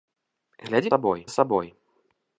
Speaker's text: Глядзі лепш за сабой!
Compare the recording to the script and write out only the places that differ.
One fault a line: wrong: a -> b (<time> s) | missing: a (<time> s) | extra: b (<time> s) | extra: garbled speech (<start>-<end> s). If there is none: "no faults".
wrong: лепш -> сабой (0.9 s)